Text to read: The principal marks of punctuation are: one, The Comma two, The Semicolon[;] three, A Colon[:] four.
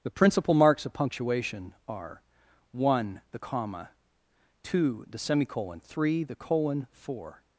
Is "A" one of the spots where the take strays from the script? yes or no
yes